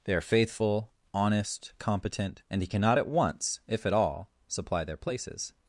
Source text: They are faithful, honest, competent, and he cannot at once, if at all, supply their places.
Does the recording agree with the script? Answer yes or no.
yes